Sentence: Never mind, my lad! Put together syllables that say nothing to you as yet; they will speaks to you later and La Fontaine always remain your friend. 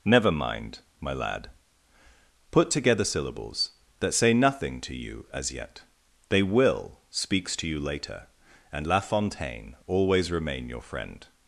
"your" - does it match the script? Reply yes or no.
yes